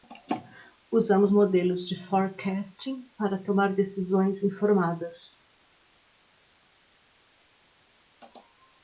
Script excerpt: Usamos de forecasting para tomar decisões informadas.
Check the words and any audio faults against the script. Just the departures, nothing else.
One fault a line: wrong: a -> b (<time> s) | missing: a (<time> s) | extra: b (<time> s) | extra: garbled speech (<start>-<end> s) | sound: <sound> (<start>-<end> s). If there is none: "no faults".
extra: modelos (1.3 s)